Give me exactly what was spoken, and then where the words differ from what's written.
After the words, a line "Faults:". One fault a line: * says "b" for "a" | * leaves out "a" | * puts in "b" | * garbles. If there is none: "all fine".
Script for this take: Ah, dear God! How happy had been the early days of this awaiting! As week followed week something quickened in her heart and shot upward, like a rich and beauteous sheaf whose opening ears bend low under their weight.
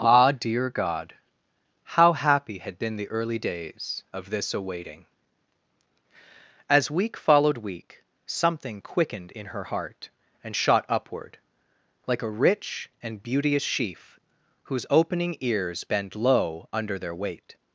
Ah, dear God! How happy had been the early days of this awaiting! As week followed week something quickened in her heart and shot upward, like a rich and beauteous sheaf whose opening ears bend low under their weight.
Faults:
all fine